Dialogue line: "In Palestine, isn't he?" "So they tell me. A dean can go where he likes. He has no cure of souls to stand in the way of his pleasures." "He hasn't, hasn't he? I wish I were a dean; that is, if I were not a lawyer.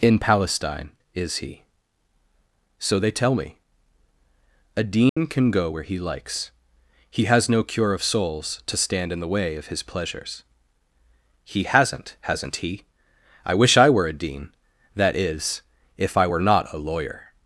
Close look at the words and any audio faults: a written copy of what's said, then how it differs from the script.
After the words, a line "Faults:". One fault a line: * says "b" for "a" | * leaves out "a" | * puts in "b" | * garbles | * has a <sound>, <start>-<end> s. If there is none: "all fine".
"In Palestine, is he?" "So they tell me. A dean can go where he likes. He has no cure of souls to stand in the way of his pleasures." "He hasn't, hasn't he? I wish I were a dean; that is, if I were not a lawyer.
Faults:
* says "is" for "isn't"
* has a dropout, 5.1-5.2 s